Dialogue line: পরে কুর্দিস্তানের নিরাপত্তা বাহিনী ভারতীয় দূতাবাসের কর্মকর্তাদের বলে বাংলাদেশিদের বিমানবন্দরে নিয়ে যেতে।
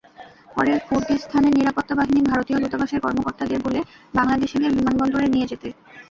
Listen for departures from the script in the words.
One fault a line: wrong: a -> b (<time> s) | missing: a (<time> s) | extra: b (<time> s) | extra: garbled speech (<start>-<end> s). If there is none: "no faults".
no faults